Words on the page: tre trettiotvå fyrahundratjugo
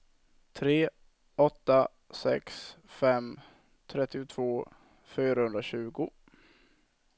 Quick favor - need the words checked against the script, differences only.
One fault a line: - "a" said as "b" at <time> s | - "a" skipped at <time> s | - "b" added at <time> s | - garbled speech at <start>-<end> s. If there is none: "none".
- "åtta sex fem" added at 1.4 s